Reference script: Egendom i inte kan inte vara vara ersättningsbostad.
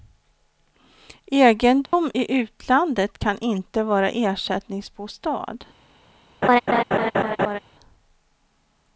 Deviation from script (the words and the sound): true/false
true